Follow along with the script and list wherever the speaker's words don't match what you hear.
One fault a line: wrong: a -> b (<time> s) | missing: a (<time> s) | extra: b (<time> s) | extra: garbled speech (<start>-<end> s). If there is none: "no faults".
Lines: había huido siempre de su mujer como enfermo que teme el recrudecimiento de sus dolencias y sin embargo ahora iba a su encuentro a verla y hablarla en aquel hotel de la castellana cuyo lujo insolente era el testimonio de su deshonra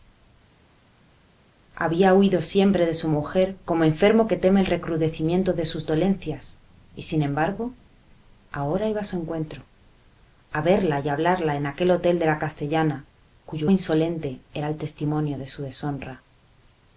missing: lujo (13.7 s)